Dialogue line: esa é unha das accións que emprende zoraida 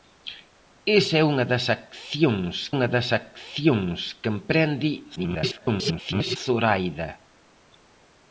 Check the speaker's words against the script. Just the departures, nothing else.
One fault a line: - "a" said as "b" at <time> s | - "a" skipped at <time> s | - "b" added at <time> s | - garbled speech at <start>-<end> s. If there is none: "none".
- "unha das accións" added at 2.7 s
- garbled speech at 5.2-6.4 s